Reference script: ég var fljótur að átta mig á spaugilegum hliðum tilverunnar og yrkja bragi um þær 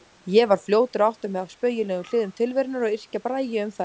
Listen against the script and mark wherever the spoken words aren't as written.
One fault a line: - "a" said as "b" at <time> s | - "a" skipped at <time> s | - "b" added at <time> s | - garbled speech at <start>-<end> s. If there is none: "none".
none